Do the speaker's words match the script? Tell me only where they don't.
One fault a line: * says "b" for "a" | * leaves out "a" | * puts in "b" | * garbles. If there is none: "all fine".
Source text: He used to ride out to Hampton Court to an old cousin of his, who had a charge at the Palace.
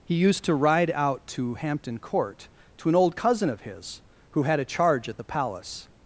all fine